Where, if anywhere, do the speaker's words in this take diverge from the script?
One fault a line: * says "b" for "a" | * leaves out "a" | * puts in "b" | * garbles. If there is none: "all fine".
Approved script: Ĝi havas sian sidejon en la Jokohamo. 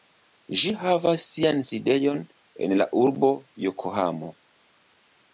* puts in "urbo"